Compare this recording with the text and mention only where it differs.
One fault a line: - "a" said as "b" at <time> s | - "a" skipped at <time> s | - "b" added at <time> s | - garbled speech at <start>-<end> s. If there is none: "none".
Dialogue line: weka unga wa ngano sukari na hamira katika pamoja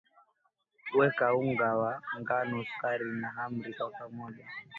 - "katika" said as "kwa" at 3.8 s